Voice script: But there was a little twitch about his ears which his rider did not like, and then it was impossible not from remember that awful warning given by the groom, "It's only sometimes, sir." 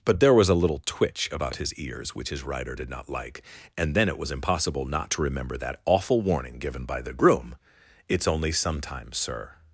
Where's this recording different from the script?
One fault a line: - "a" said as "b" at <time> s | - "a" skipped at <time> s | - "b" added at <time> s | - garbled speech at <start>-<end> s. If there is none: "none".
- "from" said as "to" at 5.1 s